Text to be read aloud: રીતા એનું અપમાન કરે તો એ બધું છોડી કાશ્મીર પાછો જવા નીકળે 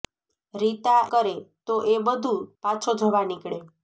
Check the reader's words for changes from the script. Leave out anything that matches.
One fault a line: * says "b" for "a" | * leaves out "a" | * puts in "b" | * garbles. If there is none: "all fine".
* leaves out "એનું અપમાન"
* leaves out "છોડી કાશ્મીર"